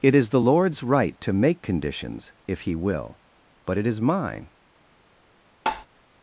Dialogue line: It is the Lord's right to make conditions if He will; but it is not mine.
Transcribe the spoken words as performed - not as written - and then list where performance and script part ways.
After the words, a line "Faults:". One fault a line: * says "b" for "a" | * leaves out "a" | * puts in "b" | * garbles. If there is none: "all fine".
It is the Lord's right to make conditions if He will; but it is mine.
Faults:
* leaves out "not"